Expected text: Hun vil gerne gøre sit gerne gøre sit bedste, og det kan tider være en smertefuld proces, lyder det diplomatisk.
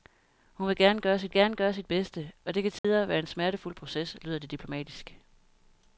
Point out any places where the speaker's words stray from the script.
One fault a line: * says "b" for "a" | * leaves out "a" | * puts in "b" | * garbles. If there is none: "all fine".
all fine